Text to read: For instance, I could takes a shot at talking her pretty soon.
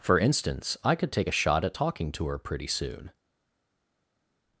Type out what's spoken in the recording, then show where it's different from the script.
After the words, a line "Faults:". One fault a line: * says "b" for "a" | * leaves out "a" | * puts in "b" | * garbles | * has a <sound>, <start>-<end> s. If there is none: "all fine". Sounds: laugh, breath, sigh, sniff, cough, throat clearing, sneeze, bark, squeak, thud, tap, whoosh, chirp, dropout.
For instance, I could take a shot at talking to her pretty soon.
Faults:
* says "take" for "takes"
* puts in "to"